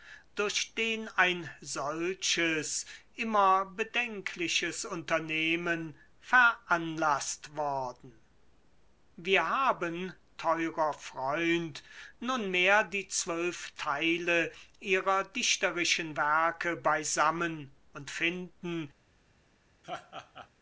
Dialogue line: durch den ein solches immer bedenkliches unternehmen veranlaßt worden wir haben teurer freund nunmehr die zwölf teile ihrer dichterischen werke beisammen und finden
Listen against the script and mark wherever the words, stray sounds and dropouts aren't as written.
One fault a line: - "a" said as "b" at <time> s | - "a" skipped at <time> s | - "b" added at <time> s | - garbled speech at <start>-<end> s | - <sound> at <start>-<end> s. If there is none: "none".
- laugh at 19.8-20.5 s